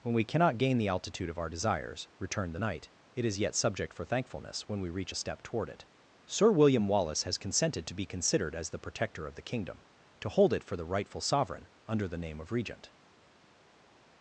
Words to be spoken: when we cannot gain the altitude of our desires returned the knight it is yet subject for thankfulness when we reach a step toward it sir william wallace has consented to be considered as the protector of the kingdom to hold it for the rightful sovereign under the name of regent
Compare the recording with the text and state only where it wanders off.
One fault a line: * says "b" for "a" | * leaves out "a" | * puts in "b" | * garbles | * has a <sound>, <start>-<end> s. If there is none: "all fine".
all fine